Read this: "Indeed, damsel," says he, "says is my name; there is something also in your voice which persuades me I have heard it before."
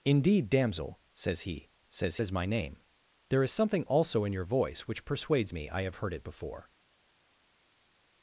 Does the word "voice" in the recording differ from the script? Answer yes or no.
no